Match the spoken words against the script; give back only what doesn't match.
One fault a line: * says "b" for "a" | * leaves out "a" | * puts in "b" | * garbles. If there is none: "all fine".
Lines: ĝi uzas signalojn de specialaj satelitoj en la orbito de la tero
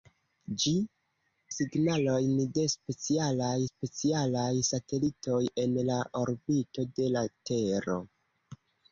* leaves out "uzas"
* puts in "specialaj"